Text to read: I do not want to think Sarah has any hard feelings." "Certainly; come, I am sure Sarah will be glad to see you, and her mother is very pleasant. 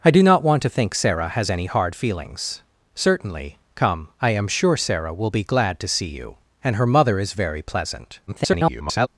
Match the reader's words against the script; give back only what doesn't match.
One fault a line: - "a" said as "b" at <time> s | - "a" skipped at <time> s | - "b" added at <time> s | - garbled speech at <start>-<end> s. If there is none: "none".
- garbled speech at 8.3-9.1 s